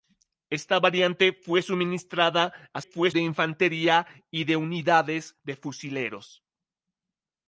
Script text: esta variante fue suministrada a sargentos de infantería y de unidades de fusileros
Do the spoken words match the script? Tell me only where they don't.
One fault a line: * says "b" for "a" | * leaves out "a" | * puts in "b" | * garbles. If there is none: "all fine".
* says "fue" for "sargentos"